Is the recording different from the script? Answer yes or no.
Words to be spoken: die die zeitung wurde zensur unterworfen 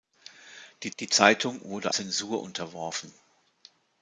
no